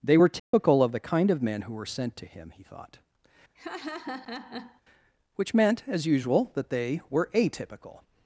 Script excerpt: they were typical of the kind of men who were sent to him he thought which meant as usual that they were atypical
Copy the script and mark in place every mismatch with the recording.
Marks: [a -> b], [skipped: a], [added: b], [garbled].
they were typical of the kind of men who were sent to him he thought which meant as usual that they were atypical